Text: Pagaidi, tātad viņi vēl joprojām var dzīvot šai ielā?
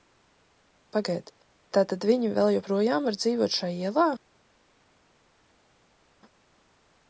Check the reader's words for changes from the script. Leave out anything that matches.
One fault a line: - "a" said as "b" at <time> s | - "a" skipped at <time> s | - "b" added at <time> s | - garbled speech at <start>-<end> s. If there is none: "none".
none